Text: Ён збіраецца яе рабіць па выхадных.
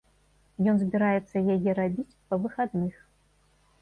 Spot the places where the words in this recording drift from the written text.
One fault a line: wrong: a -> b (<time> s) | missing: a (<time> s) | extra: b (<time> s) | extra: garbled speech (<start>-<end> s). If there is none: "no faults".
no faults